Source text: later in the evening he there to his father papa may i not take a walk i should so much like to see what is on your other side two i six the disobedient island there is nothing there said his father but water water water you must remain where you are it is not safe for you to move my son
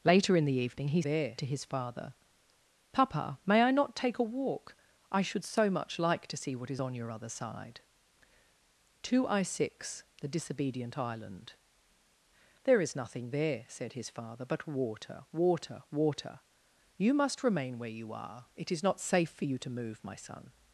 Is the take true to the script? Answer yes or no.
yes